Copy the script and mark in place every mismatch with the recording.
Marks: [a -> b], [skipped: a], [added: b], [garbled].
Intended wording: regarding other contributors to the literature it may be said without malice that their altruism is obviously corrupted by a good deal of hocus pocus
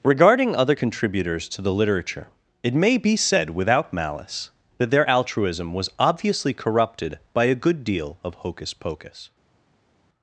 regarding other contributors to the literature it may be said without malice that their altruism [is -> was] obviously corrupted by a good deal of hocus pocus